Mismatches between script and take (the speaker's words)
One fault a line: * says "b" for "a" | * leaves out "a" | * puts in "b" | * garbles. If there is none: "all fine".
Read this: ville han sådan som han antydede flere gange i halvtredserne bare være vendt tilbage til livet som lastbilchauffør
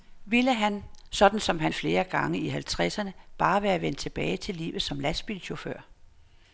* leaves out "antydede"